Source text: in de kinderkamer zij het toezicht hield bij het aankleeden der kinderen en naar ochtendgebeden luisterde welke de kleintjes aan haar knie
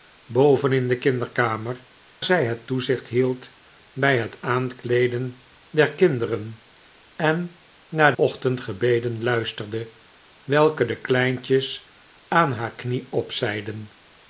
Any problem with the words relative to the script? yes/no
no